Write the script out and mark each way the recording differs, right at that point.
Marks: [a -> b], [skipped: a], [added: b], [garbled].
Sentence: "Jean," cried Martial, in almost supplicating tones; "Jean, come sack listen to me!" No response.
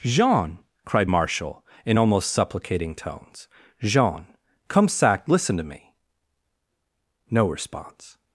"Jean," cried Martial, in almost supplicating tones; "Jean, come sack listen to me!" No response.